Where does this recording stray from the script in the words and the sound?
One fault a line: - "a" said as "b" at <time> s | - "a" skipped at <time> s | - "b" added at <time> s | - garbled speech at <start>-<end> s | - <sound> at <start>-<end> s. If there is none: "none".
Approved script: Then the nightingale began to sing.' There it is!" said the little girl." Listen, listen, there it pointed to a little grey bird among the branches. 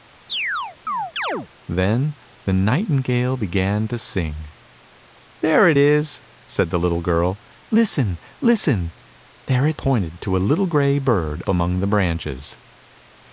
- chirp at 0.3-1.5 s